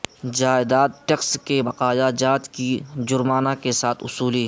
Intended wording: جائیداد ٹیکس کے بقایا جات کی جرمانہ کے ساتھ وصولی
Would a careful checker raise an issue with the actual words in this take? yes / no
no